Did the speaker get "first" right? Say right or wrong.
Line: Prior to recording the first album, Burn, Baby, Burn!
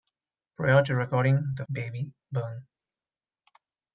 wrong